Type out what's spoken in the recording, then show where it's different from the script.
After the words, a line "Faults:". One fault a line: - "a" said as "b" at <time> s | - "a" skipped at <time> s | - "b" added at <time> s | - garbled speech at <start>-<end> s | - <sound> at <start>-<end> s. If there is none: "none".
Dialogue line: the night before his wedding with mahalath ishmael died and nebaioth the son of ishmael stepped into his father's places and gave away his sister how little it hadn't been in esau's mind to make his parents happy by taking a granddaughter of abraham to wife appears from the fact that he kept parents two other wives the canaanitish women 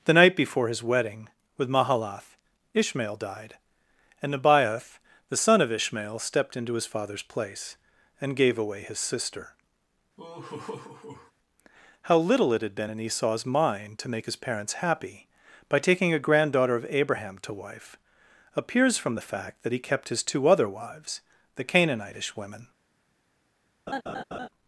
the night before his wedding with mahalath ishmael died and nebaioth the son of ishmael stepped into his father's place and gave away his sister how little it had been in esau's mind to make his parents happy by taking a granddaughter of abraham to wife appears from the fact that he kept his two other wives the canaanitish women
Faults:
- "places" said as "place" at 7.2 s
- laugh at 10.2-11.3 s
- "hadn't" said as "had" at 12.6 s
- "parents" said as "his" at 20.1 s
- laugh at 23.9-24.5 s